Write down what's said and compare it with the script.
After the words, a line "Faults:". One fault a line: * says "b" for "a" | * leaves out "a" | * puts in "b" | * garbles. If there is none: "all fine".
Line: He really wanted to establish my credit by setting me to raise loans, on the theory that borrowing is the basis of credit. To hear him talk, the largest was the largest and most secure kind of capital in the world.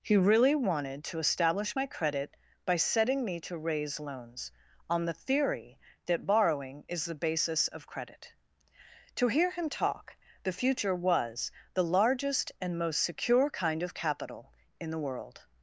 He really wanted to establish my credit by setting me to raise loans, on the theory that borrowing is the basis of credit. To hear him talk, the future was the largest and most secure kind of capital in the world.
Faults:
* says "future" for "largest"